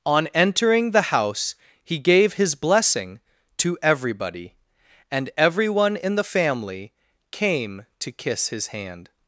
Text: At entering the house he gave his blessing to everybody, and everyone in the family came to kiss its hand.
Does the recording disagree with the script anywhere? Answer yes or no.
yes